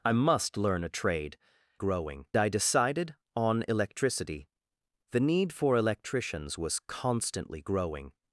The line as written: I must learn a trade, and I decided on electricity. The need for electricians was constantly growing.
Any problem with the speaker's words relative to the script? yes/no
yes